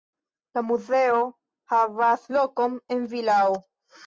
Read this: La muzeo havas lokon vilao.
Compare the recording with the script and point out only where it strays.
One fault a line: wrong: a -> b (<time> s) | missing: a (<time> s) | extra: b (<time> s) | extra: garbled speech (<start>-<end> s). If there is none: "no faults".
extra: en (3.0 s)